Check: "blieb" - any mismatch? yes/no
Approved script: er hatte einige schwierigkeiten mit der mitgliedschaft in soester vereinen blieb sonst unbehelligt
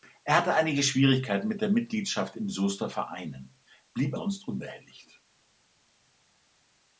no